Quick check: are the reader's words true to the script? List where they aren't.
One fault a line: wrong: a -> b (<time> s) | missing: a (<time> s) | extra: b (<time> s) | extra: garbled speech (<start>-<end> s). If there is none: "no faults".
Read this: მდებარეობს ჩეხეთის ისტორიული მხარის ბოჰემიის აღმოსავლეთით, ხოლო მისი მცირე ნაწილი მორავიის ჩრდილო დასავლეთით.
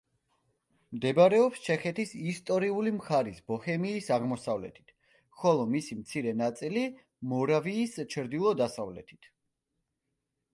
no faults